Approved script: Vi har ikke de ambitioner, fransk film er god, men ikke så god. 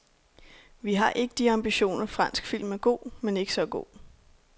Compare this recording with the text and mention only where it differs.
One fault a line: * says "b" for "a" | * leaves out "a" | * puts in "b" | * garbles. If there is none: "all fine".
all fine